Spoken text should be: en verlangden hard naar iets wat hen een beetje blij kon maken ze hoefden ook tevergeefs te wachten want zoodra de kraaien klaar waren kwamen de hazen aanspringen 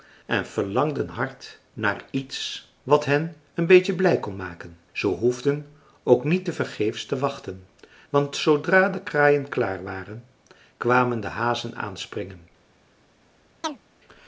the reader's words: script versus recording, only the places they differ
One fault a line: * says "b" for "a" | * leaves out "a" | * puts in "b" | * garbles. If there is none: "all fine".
* puts in "niet"